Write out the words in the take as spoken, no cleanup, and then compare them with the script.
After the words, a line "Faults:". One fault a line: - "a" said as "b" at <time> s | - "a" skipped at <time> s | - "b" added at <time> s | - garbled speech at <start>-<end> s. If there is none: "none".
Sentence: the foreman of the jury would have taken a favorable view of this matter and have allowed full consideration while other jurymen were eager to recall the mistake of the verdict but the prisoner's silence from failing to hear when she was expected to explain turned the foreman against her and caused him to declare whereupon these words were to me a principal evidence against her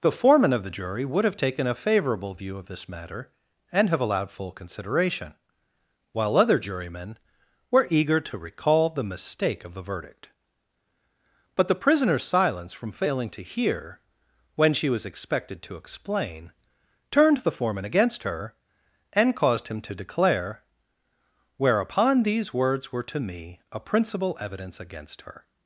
the foreman of the jury would have taken a favorable view of this matter and have allowed full consideration while other jurymen were eager to recall the mistake of the verdict but the prisoner's silence from failing to hear when she was expected to explain turned the foreman against her and caused him to declare whereupon these words were to me a principal evidence against her
Faults:
none